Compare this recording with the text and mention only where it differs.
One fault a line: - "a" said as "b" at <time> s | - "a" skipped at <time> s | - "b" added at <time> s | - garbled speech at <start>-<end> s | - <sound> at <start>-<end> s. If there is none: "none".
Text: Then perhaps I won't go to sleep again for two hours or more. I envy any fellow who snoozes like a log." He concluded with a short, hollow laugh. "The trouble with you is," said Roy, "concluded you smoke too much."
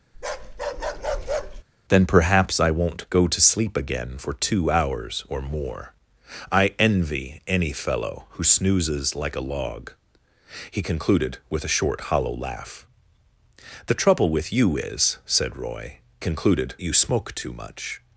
- bark at 0.1-1.6 s